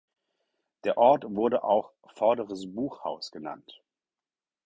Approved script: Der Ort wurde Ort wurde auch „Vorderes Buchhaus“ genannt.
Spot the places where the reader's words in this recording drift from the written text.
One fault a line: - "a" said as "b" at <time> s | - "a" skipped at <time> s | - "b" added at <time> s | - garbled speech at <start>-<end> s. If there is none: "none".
- "Ort wurde" skipped at 1.6 s